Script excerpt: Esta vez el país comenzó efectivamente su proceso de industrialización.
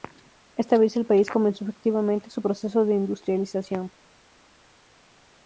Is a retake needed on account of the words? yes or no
no